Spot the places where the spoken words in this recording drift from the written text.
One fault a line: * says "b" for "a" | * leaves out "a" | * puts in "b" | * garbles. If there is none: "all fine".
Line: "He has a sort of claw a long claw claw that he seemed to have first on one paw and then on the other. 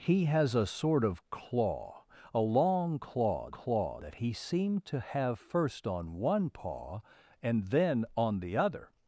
all fine